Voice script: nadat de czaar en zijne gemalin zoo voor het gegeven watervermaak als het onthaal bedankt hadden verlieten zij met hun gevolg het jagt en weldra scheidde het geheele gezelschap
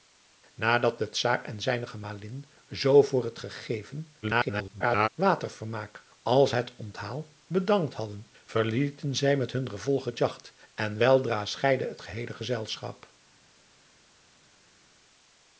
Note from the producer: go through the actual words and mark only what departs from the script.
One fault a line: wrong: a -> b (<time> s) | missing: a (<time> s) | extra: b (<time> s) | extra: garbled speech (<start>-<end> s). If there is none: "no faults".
extra: garbled speech (4.2-5.1 s)